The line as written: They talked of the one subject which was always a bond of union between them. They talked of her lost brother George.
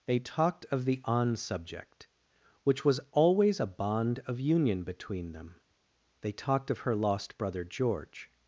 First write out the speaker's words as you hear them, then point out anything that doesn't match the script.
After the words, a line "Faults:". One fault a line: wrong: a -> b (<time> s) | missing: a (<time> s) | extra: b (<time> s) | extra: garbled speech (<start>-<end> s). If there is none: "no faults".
They talked of the on subject which was always a bond of union between them. They talked of her lost brother George.
Faults:
wrong: one -> on (1.1 s)